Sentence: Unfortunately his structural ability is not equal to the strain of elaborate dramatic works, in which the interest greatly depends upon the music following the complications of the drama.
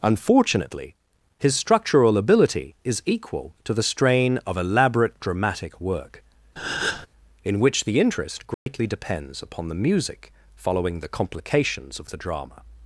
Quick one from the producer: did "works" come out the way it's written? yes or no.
no